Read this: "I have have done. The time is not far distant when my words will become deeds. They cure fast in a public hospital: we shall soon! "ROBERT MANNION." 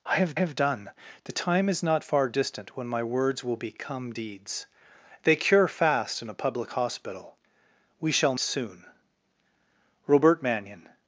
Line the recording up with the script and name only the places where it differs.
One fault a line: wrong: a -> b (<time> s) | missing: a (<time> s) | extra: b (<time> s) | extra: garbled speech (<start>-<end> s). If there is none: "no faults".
no faults